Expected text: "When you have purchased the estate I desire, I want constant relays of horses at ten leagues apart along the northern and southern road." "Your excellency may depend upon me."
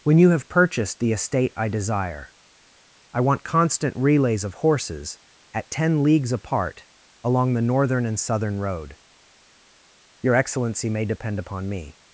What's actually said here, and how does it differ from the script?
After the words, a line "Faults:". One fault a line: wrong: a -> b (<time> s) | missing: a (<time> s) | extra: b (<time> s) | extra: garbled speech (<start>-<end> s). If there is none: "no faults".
"When you have purchased the estate I desire, I want constant relays of horses at ten leagues apart along the northern and southern road." "Your excellency may depend upon me."
Faults:
no faults